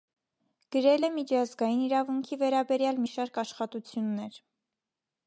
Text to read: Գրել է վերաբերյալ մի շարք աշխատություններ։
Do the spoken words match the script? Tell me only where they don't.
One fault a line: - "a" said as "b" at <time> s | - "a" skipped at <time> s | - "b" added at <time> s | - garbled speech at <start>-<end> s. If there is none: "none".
- "միջազգային իրավունքի" added at 1.1 s